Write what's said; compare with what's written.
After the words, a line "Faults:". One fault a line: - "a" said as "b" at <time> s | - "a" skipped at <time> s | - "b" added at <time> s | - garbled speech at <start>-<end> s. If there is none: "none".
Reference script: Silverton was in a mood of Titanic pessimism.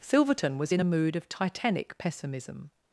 Silverton was in a mood of Titanic pessimism.
Faults:
none